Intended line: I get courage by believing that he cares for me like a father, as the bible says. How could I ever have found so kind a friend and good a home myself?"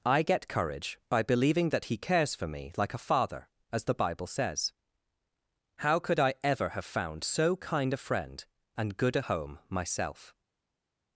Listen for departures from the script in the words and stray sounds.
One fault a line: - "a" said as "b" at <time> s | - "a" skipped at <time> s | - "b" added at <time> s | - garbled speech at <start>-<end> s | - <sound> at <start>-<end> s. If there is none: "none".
none